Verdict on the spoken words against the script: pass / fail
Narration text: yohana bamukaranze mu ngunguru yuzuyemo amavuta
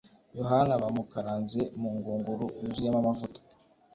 pass